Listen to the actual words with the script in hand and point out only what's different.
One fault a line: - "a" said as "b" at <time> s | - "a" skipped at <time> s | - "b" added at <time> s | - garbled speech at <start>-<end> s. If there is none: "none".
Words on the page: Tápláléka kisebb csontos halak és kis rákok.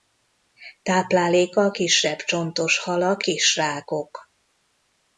- "és" skipped at 3.2 s